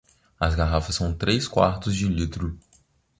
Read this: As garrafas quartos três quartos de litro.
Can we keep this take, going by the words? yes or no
no